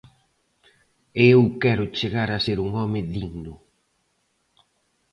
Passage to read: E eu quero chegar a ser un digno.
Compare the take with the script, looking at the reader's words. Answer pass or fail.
fail